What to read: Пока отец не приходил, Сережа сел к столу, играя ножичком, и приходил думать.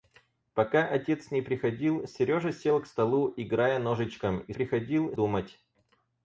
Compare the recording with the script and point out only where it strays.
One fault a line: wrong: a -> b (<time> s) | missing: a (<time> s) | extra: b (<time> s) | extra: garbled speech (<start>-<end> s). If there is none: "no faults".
no faults